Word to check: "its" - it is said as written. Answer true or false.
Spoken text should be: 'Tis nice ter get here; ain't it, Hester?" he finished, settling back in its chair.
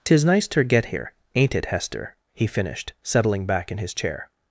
false